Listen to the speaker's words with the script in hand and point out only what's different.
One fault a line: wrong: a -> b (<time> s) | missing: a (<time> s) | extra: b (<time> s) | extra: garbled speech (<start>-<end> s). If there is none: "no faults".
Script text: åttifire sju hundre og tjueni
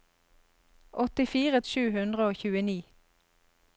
no faults